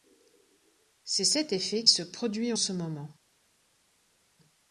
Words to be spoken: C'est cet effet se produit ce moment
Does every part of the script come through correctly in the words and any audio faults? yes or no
yes